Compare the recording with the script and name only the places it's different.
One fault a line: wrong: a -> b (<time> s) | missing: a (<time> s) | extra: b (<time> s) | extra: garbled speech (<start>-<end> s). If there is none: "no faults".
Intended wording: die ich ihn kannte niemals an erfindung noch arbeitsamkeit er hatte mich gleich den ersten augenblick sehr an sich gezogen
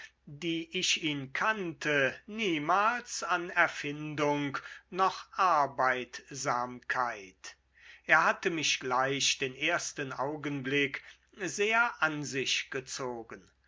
no faults